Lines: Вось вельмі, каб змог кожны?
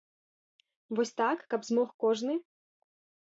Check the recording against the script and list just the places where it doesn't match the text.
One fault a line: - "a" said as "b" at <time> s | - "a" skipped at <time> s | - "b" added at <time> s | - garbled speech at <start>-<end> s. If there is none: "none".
- "вельмі" said as "так" at 1.2 s